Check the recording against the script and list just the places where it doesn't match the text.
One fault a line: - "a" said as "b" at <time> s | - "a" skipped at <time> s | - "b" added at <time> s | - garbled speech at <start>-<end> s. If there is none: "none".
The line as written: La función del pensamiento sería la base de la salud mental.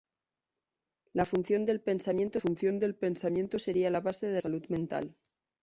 - "función del pensamiento" added at 2.4 s
- "la" skipped at 4.4 s